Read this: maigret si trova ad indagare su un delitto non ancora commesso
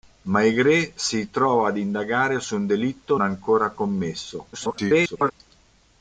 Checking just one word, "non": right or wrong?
wrong